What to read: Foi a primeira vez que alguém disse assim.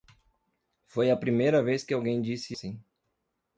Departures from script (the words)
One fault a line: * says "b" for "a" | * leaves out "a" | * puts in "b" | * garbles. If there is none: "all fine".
all fine